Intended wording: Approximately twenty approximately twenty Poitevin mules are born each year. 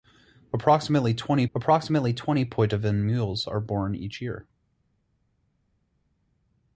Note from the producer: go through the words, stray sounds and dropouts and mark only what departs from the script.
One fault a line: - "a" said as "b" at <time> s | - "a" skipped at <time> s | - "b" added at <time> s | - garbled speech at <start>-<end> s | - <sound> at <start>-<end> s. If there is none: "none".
none